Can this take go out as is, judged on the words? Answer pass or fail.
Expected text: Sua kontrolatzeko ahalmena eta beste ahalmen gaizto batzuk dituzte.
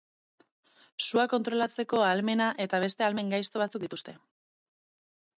pass